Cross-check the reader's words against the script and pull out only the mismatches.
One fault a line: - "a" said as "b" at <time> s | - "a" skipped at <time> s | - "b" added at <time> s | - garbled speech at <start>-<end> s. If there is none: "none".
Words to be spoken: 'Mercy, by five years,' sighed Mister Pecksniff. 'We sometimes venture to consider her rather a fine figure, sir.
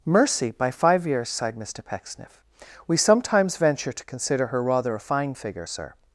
none